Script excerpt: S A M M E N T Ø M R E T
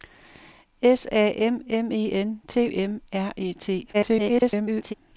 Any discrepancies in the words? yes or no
yes